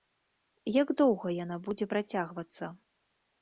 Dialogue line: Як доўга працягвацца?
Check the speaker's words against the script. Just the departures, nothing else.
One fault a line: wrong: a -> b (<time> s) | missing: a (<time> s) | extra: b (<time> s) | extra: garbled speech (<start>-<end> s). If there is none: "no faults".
extra: яна будзе (1.4 s)